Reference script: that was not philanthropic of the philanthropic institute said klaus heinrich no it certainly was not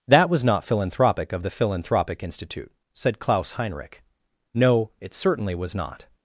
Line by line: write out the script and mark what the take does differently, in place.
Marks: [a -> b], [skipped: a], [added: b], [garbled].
that was not philanthropic of the philanthropic institute said klaus heinrich no it certainly was not